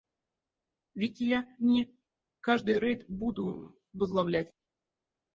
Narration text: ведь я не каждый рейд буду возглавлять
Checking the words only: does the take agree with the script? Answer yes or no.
yes